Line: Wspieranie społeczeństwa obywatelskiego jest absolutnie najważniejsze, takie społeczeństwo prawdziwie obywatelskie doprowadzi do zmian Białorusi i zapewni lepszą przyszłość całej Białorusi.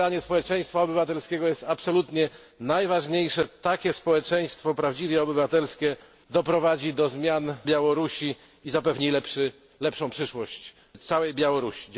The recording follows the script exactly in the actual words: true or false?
true